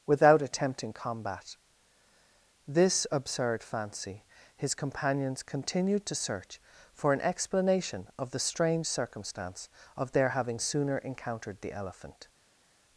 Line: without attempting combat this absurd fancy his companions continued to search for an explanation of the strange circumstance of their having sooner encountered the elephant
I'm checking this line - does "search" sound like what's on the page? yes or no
yes